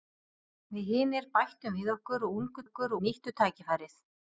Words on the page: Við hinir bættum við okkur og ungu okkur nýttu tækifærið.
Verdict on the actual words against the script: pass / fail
pass